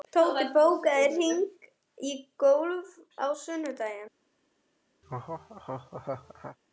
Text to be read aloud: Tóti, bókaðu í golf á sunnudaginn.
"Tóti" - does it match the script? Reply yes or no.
yes